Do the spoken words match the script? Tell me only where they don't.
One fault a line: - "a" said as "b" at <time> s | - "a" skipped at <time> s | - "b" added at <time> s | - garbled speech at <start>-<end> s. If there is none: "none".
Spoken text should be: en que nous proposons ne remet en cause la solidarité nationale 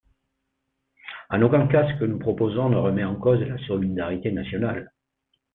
- "aucun cas ce" added at 1.4 s